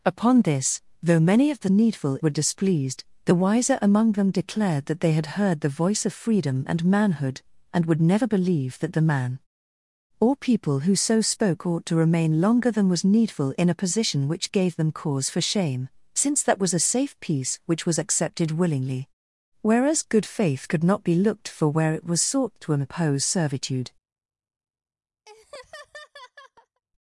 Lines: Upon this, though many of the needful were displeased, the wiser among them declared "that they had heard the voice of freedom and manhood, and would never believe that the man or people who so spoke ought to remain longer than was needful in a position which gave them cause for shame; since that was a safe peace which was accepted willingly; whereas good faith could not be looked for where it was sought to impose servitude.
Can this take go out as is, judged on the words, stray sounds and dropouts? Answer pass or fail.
fail